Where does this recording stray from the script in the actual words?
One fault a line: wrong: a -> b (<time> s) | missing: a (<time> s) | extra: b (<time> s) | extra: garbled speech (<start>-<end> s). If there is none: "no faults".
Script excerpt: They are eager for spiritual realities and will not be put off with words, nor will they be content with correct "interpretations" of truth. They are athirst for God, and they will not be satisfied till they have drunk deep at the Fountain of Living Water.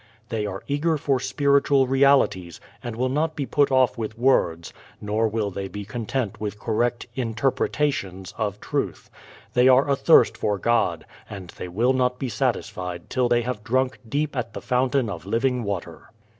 no faults